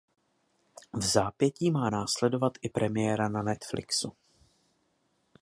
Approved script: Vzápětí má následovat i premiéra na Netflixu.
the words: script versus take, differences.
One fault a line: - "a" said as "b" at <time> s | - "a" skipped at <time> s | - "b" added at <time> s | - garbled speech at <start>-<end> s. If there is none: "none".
none